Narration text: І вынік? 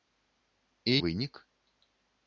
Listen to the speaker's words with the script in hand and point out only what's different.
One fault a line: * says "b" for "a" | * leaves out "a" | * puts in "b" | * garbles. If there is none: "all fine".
all fine